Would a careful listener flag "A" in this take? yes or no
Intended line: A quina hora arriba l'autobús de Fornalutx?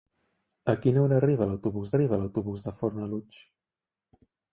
no